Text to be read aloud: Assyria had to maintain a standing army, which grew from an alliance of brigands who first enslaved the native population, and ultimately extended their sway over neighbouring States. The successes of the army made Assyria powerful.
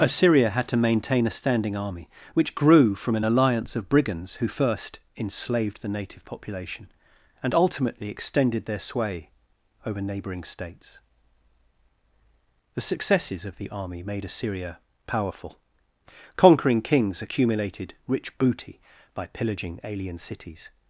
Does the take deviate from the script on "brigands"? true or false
false